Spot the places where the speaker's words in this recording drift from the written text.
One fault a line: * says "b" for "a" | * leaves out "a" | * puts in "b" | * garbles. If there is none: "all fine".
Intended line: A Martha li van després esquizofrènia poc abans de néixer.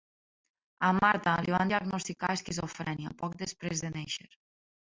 * says "diagnosticar" for "després"
* says "després" for "abans"